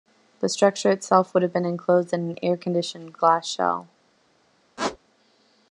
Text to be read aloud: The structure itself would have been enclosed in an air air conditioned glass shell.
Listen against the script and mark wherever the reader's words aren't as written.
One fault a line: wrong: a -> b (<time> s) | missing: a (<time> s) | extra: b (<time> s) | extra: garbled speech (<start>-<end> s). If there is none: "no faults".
missing: air (2.6 s)